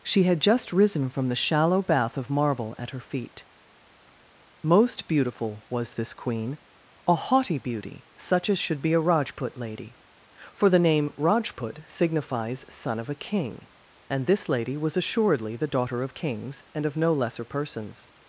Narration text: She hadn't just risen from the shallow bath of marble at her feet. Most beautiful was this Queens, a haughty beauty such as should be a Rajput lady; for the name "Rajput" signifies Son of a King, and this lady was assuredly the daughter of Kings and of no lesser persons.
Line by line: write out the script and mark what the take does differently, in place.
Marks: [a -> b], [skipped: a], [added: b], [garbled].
She [hadn't -> had] just risen from the shallow bath of marble at her feet. Most beautiful was this [Queens, -> Queen] a haughty beauty such as should be a Rajput lady; for the name "Rajput" signifies Son of a King, and this lady was assuredly the daughter of Kings and of no lesser persons.